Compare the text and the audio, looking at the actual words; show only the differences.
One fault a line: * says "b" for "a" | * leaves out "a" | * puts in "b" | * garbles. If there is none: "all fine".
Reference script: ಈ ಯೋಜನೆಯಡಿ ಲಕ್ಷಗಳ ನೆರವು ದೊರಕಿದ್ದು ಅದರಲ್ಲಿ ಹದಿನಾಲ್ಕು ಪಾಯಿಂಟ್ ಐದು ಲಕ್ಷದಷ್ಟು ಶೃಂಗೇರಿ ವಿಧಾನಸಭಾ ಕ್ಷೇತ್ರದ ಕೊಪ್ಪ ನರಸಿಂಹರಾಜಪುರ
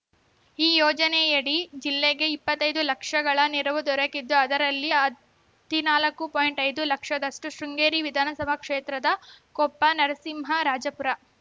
* puts in "ಜಿಲ್ಲೆಗೆ ಇಪ್ಪತ್ತೈದು"